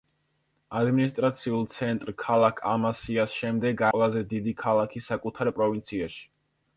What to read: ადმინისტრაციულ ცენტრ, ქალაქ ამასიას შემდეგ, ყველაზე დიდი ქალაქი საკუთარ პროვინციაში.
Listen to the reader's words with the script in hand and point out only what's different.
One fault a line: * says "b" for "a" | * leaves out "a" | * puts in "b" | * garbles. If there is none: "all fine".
all fine